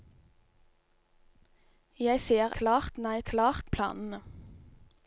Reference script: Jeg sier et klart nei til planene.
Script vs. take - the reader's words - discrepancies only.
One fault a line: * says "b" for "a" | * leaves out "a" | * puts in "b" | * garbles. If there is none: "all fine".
* leaves out "et"
* says "klart" for "til"